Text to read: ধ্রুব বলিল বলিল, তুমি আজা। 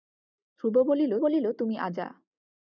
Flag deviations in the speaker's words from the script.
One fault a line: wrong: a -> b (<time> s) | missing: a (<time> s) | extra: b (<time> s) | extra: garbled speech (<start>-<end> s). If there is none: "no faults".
no faults